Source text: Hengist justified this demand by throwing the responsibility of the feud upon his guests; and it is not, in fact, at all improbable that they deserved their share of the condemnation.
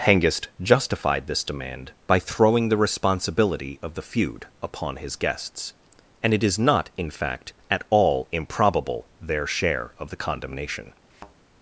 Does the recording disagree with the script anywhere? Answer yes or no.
yes